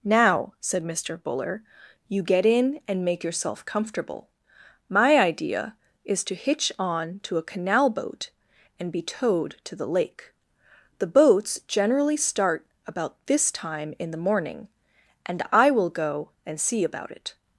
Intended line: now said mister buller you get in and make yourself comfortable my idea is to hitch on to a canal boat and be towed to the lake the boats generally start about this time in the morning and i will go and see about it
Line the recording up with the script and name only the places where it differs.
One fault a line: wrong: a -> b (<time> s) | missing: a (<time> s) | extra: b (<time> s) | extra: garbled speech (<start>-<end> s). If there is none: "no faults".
no faults